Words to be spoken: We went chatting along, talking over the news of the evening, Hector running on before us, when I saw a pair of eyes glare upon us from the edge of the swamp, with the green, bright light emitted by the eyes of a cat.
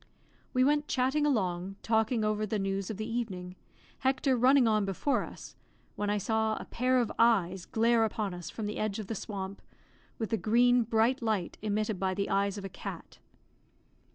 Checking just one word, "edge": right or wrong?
right